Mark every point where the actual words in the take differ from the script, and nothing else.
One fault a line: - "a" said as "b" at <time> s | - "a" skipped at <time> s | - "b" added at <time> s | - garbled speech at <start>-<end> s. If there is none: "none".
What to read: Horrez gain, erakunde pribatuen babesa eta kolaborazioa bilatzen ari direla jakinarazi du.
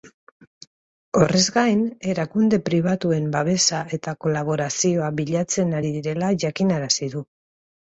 none